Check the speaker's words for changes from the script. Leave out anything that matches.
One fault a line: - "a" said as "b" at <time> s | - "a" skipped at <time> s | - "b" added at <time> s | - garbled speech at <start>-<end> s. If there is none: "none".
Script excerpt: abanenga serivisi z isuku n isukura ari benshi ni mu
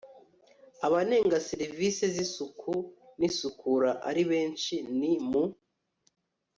none